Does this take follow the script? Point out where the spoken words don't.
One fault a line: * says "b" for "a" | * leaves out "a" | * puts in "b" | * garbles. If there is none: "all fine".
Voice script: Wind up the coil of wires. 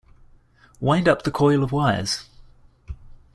all fine